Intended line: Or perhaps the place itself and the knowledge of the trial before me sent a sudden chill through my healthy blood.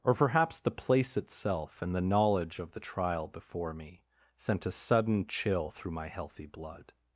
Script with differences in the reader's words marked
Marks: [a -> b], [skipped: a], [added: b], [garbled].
Or perhaps the place itself and the knowledge of the trial before me sent a sudden chill through my healthy blood.